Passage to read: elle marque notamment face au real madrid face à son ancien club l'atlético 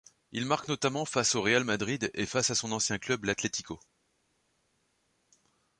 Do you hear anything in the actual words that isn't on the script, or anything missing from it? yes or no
yes